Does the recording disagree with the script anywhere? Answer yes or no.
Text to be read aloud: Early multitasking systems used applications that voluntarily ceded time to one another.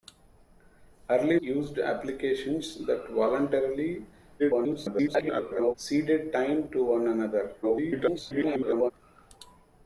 yes